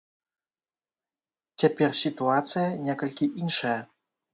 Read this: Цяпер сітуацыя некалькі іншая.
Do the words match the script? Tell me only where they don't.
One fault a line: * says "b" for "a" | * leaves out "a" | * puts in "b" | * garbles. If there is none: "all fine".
all fine